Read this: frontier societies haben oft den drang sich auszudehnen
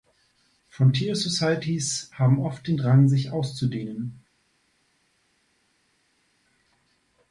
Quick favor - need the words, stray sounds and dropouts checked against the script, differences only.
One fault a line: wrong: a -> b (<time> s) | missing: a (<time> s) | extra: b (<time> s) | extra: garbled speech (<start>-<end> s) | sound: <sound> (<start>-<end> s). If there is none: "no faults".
no faults